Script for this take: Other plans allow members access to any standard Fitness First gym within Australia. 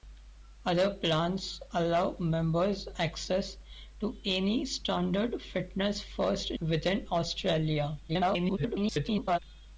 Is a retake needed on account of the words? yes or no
yes